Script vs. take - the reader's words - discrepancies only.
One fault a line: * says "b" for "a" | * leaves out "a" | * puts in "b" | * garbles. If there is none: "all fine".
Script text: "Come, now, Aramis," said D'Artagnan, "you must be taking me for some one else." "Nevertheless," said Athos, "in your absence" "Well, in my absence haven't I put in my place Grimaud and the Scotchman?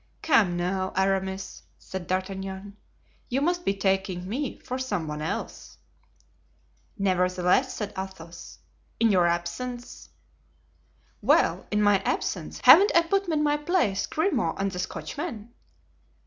all fine